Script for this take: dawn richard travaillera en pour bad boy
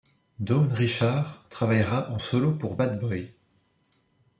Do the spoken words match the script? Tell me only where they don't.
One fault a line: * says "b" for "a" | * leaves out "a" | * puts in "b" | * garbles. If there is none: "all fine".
* puts in "solo"